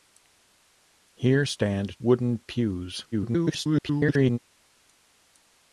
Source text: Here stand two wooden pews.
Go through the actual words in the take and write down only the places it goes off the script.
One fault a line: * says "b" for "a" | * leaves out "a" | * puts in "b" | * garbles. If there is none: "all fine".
* leaves out "two"
* garbles